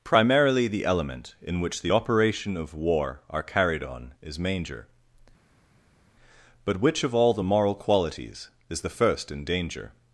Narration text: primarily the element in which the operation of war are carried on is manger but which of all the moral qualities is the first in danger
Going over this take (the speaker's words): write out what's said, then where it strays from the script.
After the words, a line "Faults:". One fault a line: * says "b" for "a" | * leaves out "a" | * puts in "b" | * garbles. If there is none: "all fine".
primarily the element in which the operation of war are carried on is manger but which of all the moral qualities is the first in danger
Faults:
all fine